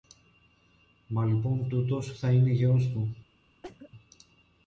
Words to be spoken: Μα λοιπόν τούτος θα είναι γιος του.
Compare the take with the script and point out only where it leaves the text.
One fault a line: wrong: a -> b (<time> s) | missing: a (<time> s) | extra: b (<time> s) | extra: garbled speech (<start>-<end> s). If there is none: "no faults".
no faults